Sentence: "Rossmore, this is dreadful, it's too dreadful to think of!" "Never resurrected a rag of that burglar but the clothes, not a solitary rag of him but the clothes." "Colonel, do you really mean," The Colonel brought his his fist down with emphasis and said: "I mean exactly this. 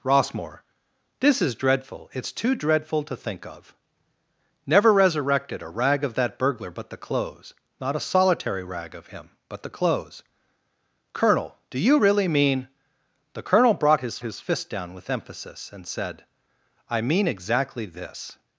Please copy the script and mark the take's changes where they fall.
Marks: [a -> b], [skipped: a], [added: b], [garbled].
"Rossmore, this is dreadful, it's too dreadful to think of!" "Never resurrected a rag of that burglar but the clothes, not a solitary rag of him but the clothes." "Colonel, do you really mean," The Colonel brought his his fist down with emphasis and said: "I mean exactly this.